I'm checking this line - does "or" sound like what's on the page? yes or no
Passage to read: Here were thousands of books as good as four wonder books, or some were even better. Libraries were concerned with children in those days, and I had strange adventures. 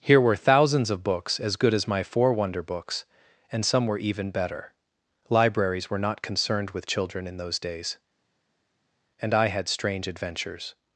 no